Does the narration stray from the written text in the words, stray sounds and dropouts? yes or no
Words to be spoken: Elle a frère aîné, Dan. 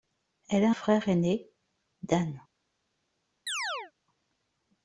yes